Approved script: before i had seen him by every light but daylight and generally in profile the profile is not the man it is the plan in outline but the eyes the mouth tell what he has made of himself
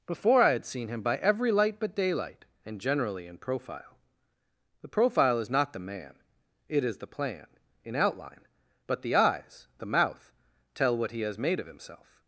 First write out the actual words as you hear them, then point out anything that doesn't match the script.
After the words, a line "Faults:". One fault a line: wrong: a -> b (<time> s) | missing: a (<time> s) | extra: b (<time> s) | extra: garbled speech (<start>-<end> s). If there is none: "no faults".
before i had seen him by every light but daylight and generally in profile the profile is not the man it is the plan in outline but the eyes the mouth tell what he has made of himself
Faults:
no faults